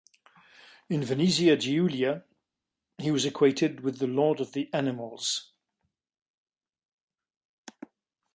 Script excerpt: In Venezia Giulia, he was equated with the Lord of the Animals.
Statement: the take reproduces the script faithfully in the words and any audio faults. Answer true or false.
true